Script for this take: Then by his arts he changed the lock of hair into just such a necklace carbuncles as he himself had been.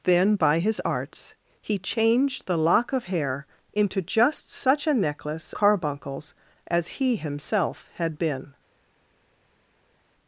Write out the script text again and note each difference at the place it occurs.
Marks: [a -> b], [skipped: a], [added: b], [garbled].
Then by his arts he changed the lock of hair into just such a necklace carbuncles as he himself had been.